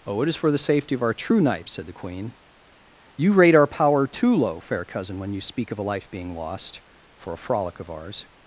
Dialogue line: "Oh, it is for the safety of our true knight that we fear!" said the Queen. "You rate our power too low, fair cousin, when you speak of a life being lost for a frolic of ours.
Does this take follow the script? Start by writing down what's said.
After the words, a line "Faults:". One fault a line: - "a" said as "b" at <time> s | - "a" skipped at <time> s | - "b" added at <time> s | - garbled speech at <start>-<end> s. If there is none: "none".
"Oh, it is for the safety of our true knight!" said the Queen. "You rate our power too low, fair cousin, when you speak of a life being lost for a frolic of ours.
Faults:
- "that we fear" skipped at 1.7 s